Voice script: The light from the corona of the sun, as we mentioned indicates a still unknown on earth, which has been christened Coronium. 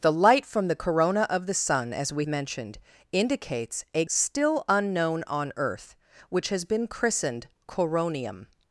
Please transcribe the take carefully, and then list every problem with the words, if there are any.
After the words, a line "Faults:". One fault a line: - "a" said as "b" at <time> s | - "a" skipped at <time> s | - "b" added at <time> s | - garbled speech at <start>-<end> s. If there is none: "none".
The light from the corona of the sun, as we mentioned indicates a still unknown on earth, which has been christened Coronium.
Faults:
none